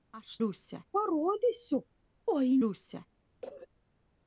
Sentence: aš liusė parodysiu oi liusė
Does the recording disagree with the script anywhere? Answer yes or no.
no